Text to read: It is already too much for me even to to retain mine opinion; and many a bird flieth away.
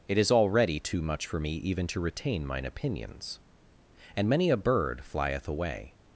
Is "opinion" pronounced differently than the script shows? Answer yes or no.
yes